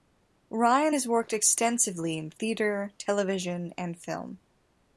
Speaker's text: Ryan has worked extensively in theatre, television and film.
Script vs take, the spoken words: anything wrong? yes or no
no